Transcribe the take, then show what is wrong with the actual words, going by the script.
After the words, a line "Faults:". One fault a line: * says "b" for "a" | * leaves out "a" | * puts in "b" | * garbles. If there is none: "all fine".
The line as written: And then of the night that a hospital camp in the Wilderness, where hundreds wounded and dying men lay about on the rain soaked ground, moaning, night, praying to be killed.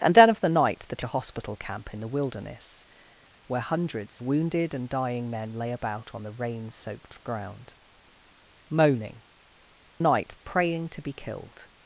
And then of the night that a hospital camp in the Wilderness, where hundreds wounded and dying men lay about on the rain soaked ground, moaning, night, praying to be killed.
Faults:
all fine